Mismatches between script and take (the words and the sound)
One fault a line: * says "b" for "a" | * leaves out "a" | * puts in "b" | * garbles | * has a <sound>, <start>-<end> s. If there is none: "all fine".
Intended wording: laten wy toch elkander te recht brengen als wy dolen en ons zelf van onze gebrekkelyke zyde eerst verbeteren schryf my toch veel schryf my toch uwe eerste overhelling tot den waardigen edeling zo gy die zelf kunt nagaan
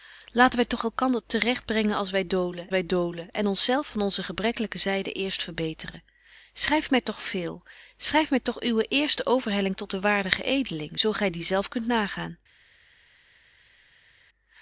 * puts in "wy dolen"